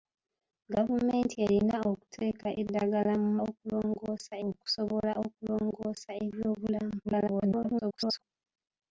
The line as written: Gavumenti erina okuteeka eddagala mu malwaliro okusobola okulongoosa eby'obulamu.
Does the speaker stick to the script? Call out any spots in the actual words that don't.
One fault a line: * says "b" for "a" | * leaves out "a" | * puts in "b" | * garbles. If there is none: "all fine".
* says "okulongoosa" for "malwaliro"
* garbles